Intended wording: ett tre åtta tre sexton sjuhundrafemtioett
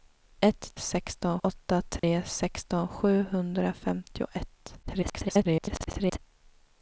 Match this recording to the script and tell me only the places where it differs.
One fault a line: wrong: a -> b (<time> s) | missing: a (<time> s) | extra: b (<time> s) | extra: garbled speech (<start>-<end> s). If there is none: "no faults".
wrong: tre -> sexton (0.7 s)
extra: garbled speech (4.8-6.2 s)